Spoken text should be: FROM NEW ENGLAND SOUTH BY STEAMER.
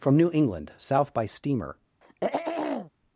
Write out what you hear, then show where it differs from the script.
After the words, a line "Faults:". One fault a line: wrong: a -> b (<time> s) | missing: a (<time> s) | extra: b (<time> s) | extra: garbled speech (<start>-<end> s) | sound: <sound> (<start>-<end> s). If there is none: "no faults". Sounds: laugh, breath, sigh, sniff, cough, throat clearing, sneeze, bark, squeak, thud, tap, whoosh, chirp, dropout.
FROM NEW ENGLAND SOUTH BY STEAMER.
Faults:
sound: throat clearing (2.0-2.9 s)